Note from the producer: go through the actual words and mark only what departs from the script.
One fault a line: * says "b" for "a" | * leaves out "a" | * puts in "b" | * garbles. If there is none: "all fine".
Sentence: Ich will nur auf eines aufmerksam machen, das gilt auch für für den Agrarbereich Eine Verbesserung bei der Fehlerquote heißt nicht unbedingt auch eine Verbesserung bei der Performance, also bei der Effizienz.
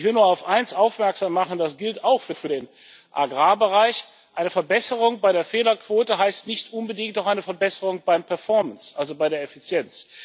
all fine